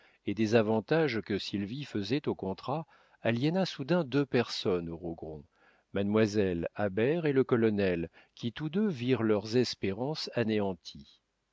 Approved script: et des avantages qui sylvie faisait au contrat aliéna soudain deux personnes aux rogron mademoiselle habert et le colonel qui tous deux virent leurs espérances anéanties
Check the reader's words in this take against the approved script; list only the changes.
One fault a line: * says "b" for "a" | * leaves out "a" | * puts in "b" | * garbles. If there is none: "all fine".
* says "que" for "qui"